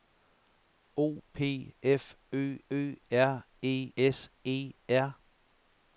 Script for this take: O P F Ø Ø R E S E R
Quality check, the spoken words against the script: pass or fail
pass